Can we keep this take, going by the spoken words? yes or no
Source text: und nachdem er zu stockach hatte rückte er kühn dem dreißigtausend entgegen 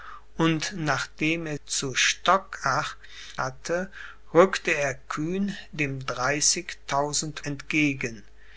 yes